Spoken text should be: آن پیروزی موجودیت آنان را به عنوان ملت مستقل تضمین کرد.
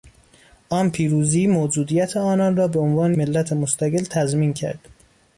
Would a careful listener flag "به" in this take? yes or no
no